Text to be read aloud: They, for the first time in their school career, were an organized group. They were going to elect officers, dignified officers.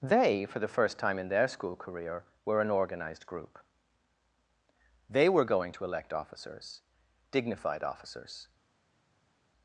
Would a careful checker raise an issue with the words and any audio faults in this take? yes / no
no